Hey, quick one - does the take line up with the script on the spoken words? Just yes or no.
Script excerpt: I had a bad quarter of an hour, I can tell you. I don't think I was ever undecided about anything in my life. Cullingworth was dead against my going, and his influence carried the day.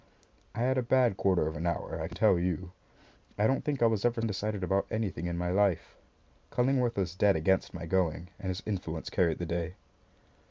yes